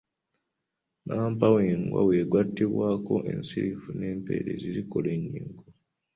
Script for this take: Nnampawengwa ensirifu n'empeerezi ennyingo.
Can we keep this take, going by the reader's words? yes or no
no